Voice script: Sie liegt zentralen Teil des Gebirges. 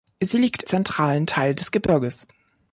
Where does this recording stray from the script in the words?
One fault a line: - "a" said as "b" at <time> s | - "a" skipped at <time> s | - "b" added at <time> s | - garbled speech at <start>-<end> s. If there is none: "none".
none